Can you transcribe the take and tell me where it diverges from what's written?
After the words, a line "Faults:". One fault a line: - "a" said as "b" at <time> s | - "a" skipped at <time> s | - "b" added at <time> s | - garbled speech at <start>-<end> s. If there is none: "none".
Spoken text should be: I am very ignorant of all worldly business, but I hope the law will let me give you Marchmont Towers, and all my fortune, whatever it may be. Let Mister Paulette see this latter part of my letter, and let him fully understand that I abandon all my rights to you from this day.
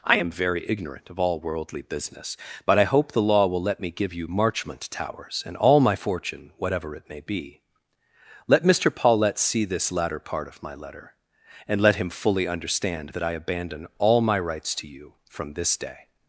I am very ignorant of all worldly business, but I hope the law will let me give you Marchmont Towers, and all my fortune, whatever it may be. Let Mister Paulette see this latter part of my letter, and let him fully understand that I abandon all my rights to you from this day.
Faults:
none